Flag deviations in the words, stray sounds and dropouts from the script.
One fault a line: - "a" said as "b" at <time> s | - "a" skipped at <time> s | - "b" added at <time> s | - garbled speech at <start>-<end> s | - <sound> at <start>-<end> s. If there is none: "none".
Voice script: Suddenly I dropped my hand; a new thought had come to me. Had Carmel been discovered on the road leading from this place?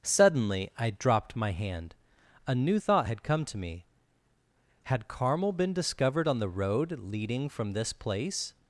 none